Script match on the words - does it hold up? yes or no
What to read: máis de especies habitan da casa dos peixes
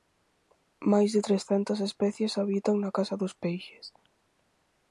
no